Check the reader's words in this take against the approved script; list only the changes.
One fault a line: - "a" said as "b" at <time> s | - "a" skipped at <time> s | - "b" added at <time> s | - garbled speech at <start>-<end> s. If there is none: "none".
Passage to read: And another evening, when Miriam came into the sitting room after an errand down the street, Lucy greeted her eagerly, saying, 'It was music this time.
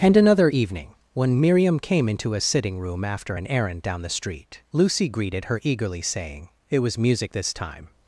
- "the" said as "a" at 2.3 s